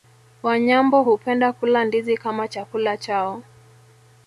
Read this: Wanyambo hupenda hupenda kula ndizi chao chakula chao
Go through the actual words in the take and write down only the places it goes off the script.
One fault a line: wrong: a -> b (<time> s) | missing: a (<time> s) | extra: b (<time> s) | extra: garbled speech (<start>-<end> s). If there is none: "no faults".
missing: hupenda (1.5 s)
wrong: chao -> kama (2.2 s)